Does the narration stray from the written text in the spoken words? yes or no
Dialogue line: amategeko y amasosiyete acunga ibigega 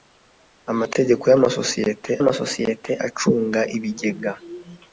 yes